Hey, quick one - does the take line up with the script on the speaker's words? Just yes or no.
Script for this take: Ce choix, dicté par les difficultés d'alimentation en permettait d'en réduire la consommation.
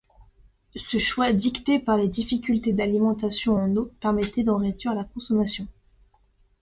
no